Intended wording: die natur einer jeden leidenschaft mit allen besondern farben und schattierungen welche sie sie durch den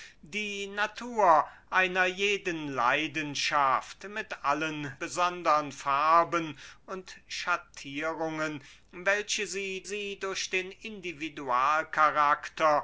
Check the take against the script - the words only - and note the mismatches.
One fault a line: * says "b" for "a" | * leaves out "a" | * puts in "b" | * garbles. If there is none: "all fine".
all fine